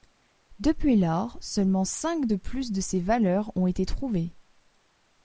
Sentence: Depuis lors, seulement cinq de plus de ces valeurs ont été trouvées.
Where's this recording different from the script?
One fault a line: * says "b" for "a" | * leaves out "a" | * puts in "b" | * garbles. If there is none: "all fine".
all fine